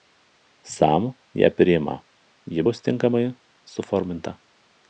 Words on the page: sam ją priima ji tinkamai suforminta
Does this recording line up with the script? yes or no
no